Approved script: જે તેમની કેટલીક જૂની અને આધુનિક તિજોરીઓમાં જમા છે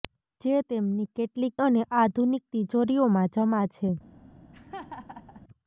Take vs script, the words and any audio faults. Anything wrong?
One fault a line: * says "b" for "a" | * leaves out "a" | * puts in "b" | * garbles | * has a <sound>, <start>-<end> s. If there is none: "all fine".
* leaves out "જૂની"
* has a laugh, 4.5-5.4 s